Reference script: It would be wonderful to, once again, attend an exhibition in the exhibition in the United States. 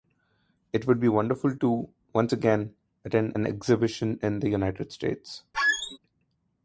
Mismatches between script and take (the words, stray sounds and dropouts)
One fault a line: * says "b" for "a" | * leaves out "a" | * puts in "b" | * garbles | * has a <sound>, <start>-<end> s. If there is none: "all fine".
* leaves out "exhibition in the"
* has a squeak, 5.5-6.0 s